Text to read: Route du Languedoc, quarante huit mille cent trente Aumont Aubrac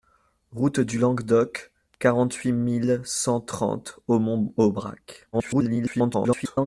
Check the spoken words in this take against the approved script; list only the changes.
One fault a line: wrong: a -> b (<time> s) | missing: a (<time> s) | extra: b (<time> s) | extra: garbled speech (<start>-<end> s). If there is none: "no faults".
extra: garbled speech (5.3-6.7 s)